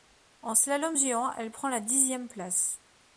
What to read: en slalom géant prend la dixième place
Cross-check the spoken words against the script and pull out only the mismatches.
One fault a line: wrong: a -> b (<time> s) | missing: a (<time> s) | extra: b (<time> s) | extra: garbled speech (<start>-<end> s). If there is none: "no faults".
extra: elle (1.3 s)